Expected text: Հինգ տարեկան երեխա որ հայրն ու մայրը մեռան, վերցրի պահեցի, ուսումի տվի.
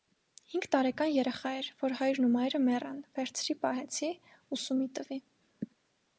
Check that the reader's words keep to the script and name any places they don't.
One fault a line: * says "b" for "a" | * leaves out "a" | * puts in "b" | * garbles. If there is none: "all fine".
* puts in "էր"